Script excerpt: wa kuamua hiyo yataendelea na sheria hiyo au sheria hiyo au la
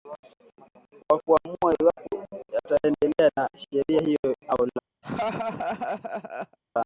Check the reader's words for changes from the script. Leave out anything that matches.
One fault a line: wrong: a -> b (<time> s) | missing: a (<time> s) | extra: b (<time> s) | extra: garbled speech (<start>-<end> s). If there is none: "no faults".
wrong: hiyo -> iwapo (1.8 s)
missing: sheria hiyo au (4.7 s)